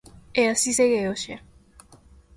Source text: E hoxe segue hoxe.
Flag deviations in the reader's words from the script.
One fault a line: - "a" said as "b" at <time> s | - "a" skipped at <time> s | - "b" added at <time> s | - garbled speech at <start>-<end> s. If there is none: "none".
- "hoxe" said as "así" at 0.5 s